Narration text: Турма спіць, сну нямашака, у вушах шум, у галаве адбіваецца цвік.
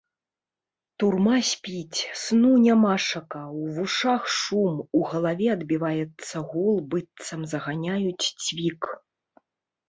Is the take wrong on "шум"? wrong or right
right